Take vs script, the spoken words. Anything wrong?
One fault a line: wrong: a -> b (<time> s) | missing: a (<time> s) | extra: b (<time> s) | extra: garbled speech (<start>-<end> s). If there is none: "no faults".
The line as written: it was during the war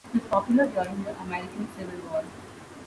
extra: popular (0.3 s)
extra: american civil (1.2 s)